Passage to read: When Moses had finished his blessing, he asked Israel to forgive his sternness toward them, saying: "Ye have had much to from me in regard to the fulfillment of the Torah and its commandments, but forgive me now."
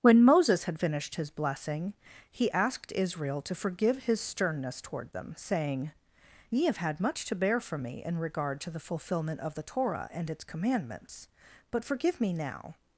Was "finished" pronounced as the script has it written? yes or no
yes